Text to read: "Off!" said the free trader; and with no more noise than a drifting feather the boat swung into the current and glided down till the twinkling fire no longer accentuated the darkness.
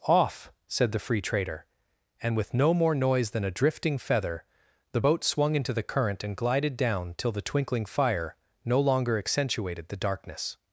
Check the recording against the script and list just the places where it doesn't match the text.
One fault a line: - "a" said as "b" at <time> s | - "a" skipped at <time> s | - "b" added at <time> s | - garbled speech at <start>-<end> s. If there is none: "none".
none